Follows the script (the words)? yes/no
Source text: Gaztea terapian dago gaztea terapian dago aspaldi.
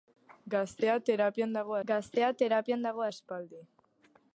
yes